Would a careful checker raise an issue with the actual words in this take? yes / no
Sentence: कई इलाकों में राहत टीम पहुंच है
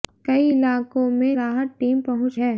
no